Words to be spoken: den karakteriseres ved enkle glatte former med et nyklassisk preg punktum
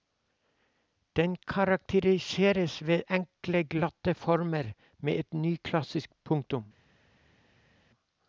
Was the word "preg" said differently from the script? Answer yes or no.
yes